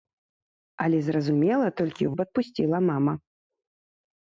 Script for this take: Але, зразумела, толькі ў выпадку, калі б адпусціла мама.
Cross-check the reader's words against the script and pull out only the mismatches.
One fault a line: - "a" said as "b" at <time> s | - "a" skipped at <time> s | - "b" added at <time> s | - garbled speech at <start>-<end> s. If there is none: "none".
- "выпадку калі" skipped at 2.1 s